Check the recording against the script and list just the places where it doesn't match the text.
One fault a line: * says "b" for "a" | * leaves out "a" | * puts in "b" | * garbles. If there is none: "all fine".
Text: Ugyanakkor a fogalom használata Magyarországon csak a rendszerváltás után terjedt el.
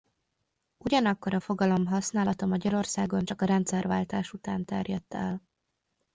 all fine